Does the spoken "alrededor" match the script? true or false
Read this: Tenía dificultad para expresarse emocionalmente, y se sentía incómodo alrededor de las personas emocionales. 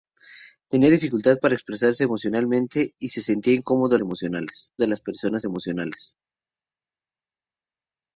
false